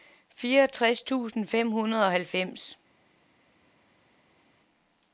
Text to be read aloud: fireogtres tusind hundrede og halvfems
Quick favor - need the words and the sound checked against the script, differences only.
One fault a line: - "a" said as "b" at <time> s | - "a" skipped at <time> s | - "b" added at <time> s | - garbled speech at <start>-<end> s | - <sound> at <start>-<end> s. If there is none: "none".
- "fem" added at 1.5 s